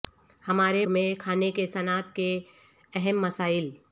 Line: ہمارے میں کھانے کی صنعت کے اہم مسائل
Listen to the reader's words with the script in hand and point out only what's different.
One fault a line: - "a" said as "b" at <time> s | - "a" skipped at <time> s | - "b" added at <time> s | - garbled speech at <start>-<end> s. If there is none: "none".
none